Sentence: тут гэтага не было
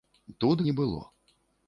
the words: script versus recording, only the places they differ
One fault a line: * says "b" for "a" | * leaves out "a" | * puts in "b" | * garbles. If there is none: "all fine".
* leaves out "гэтага"